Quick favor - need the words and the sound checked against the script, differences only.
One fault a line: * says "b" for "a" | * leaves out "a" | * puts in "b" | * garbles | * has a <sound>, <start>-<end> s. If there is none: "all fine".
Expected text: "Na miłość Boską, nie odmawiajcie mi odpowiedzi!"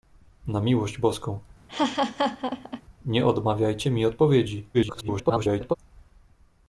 * has a laugh, 1.7-2.8 s
* garbles